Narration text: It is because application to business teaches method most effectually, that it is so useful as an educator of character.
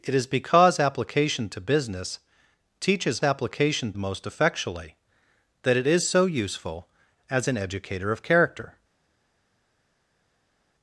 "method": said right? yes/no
no